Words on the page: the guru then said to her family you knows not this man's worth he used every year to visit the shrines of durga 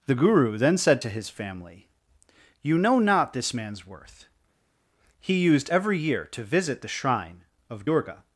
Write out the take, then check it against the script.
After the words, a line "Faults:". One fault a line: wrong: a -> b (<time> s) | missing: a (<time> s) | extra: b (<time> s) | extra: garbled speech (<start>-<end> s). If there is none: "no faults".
the guru then said to his family you know not this man's worth he used every year to visit the shrine of durga
Faults:
wrong: her -> his (1.1 s)
wrong: knows -> know (2.8 s)
wrong: shrines -> shrine (6.9 s)